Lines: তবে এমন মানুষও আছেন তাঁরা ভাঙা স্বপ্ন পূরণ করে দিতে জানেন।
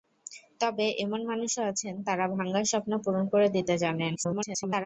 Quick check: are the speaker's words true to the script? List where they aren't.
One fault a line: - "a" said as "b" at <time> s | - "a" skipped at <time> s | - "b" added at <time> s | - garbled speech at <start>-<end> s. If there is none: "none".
- garbled speech at 4.1-4.9 s